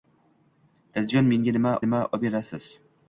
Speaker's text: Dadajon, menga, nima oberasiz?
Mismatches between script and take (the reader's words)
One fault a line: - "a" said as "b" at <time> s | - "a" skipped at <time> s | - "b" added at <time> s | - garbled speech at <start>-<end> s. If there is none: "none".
- "nima" added at 1.9 s